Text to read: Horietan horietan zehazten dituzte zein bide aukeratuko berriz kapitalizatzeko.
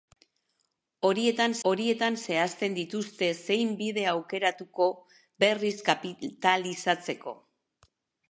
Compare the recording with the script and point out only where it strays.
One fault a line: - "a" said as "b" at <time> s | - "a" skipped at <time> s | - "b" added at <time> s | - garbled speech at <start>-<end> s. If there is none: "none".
none